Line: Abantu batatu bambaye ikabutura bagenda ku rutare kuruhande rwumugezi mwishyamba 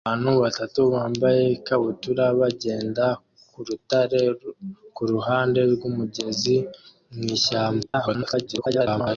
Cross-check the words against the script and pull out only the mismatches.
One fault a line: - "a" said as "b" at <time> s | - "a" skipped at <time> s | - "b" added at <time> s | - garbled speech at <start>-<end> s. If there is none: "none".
- garbled speech at 7.8-9.2 s